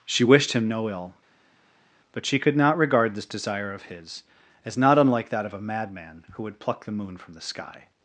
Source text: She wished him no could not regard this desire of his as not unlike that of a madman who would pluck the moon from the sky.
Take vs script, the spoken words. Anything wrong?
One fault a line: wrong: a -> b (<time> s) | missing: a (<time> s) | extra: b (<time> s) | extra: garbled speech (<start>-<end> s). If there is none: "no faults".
extra: ill but she (0.9 s)